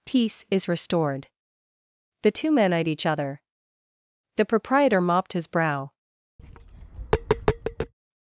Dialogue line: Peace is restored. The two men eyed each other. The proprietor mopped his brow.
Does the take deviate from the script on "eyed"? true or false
false